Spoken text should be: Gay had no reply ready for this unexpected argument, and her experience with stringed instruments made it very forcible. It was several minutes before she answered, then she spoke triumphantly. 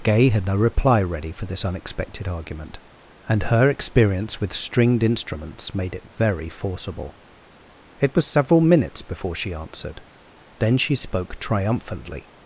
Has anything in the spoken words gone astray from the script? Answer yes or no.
no